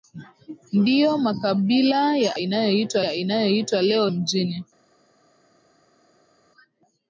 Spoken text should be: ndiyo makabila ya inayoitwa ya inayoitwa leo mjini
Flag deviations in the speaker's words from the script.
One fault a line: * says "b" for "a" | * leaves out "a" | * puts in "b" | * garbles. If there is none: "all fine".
all fine